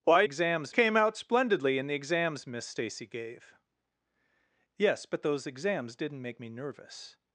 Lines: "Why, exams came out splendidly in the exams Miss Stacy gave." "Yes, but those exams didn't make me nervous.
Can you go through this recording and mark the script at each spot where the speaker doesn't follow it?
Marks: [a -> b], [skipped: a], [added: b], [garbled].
"Why, exams came out splendidly in the exams Miss Stacy gave." "Yes, but those exams didn't make me nervous.